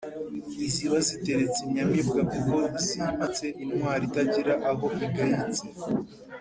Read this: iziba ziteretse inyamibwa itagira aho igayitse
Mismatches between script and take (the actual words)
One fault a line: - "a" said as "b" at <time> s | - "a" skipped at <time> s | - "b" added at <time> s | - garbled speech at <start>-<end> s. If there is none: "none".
- "kuko zimitse intwari" added at 2.3 s